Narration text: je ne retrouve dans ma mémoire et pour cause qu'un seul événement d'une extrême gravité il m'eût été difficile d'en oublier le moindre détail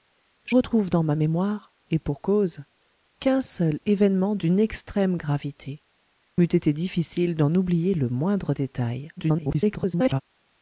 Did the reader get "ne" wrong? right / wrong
wrong